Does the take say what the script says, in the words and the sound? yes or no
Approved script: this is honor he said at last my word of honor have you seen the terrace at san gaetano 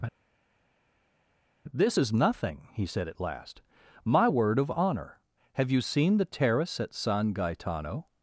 no